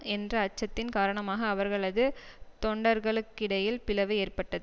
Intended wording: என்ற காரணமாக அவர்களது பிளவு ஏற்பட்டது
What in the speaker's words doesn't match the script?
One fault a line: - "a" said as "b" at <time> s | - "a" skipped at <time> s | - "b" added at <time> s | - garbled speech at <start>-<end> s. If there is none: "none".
- "அச்சத்தின்" added at 0.5 s
- "தொண்டர்களுக்கிடையில்" added at 2.6 s